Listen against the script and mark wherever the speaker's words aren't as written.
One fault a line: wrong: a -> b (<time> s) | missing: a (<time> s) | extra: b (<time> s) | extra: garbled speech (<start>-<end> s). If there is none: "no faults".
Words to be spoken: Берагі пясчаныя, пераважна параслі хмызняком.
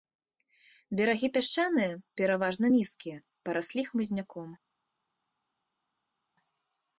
extra: нізкія (2.8 s)